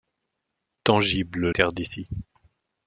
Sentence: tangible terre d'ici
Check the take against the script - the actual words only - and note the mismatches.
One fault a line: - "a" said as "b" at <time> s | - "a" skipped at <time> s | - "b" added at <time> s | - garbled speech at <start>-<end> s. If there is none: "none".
none